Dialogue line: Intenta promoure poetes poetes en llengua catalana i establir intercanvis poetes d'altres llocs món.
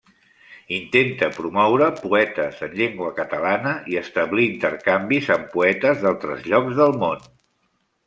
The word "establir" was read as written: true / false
true